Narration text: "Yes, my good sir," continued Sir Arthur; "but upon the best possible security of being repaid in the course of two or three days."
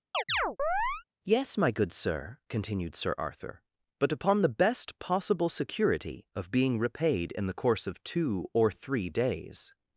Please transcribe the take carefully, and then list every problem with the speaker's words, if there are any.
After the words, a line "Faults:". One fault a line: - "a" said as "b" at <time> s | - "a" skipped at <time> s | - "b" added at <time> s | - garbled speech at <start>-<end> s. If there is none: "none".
"Yes, my good sir," continued Sir Arthur; "but upon the best possible security of being repaid in the course of two or three days."
Faults:
none